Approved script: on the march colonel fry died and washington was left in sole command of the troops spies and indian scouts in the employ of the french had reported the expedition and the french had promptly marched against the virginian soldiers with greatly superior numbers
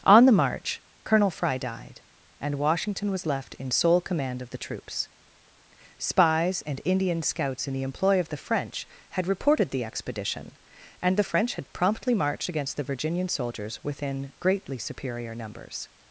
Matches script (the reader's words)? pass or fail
fail